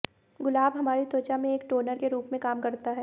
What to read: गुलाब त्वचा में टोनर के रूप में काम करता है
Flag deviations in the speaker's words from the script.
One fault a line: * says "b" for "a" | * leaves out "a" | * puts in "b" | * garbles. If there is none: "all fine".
* puts in "हमारी"
* puts in "एक"